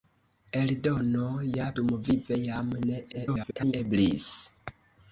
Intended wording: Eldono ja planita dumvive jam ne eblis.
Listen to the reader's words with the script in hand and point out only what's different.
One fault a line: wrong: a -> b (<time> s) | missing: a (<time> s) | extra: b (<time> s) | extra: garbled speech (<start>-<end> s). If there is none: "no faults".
missing: planita (1.7 s)
extra: garbled speech (3.1-3.7 s)